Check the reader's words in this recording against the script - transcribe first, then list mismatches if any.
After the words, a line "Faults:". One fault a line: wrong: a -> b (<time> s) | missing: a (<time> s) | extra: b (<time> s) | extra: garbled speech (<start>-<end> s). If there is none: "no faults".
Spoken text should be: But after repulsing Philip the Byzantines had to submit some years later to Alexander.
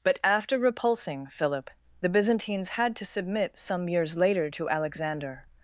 But after repulsing Philip the Byzantines had to submit some years later to Alexander.
Faults:
no faults